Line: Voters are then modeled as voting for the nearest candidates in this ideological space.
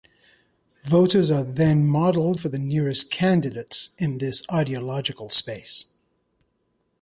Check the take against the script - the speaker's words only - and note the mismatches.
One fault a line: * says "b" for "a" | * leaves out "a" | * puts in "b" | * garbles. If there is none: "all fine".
* leaves out "as voting"